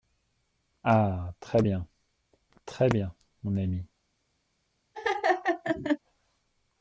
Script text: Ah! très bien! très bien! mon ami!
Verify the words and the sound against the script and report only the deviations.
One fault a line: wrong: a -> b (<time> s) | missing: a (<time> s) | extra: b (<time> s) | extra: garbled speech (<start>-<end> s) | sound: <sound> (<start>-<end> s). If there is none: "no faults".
sound: laugh (4.9-6.0 s)